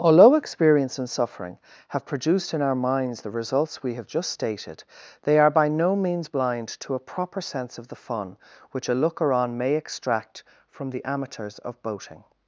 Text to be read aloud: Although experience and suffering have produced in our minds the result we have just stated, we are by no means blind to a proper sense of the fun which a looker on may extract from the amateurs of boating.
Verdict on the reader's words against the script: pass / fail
fail